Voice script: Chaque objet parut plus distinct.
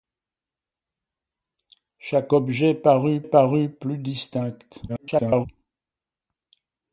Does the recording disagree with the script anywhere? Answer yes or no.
yes